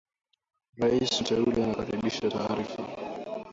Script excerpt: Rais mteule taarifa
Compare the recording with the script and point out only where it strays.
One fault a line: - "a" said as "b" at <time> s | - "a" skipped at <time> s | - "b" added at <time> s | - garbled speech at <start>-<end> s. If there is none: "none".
- "anakaribisha" added at 1.6 s